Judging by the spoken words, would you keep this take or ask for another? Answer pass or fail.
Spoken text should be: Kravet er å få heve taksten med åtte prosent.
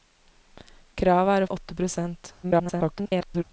fail